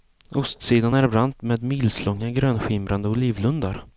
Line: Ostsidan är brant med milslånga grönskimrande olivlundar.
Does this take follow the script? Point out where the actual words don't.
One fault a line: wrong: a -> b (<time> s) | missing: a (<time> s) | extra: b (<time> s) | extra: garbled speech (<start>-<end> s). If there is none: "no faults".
no faults